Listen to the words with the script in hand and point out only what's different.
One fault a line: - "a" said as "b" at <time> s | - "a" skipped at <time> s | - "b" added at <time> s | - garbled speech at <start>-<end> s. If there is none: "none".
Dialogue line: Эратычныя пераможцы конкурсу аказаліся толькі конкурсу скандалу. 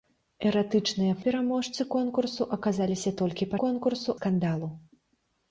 none